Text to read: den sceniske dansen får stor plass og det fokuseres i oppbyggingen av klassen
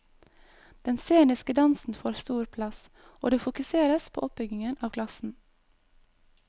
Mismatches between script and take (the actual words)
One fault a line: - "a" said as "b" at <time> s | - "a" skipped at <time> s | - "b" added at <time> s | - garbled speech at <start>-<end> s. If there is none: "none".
- "i" said as "på" at 4.1 s